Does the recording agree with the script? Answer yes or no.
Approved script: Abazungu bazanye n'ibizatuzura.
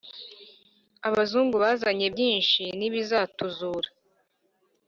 no